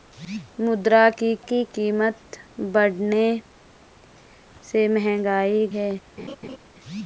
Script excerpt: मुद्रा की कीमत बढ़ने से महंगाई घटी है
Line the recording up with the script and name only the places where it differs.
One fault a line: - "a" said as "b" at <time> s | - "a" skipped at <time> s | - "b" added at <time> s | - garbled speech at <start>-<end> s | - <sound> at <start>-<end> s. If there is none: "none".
- "की" added at 1.4 s
- "घटी" skipped at 5.7 s
- laugh at 6.2-6.6 s